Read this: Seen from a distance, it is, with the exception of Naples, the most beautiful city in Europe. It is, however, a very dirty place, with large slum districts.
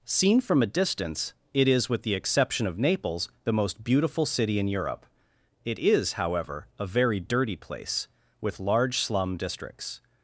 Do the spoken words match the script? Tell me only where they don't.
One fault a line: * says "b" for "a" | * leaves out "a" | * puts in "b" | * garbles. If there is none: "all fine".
all fine